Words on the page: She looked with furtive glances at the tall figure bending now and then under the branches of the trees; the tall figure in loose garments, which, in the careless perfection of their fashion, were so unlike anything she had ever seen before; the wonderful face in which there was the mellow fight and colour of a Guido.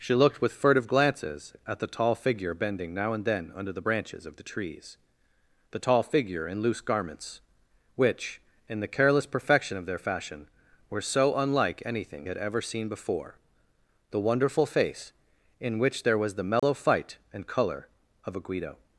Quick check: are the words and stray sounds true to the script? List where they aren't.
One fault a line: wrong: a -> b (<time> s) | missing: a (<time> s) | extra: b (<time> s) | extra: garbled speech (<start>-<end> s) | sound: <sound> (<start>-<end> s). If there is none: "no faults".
missing: she (12.3 s)
sound: dropout (16.6-16.6 s)